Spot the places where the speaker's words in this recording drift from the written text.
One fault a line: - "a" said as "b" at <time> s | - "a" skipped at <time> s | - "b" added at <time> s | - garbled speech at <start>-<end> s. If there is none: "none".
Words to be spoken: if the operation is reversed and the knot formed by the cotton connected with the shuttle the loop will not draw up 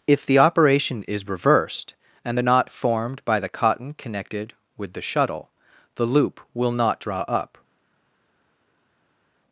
none